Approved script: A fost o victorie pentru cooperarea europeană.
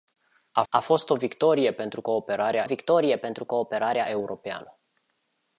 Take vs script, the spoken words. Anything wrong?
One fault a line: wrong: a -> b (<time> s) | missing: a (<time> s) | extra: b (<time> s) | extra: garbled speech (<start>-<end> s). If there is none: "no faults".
extra: a (0.7 s)
extra: victorie pentru cooperarea (2.6 s)